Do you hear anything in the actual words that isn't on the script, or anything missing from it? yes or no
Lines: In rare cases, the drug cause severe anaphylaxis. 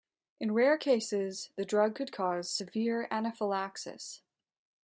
yes